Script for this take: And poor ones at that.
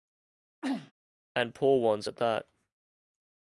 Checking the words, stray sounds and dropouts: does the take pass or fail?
fail